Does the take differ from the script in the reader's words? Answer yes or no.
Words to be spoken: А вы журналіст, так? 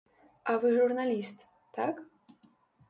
no